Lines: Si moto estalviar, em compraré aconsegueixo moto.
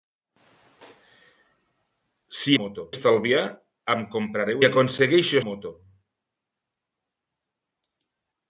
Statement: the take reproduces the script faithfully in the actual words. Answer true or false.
true